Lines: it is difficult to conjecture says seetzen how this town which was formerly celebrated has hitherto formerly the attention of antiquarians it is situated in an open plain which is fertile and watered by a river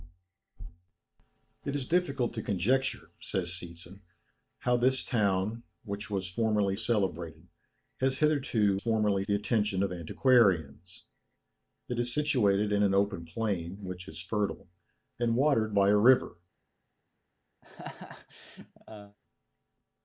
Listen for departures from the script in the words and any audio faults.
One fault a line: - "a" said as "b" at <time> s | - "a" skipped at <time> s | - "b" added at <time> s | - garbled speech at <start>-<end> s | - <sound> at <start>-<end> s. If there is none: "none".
- laugh at 17.6-19.2 s